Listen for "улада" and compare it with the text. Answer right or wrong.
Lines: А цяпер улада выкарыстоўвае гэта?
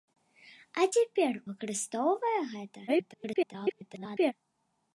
wrong